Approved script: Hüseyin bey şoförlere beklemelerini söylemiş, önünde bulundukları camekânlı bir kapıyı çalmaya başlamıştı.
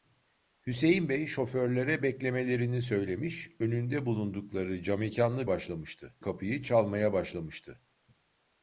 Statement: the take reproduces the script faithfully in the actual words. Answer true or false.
false